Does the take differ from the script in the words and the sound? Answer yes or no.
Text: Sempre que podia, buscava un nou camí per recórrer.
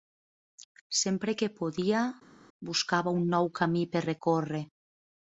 no